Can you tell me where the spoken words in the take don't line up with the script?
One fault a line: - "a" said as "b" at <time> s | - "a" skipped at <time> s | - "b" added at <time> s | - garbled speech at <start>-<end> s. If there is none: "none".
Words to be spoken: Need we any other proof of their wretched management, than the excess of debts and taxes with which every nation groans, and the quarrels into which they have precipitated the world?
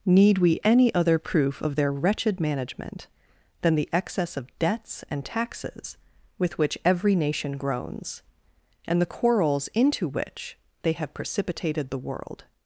none